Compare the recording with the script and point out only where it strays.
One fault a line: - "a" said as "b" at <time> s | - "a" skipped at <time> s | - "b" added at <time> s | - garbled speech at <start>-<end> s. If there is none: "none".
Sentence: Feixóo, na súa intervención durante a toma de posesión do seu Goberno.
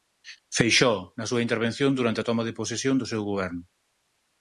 none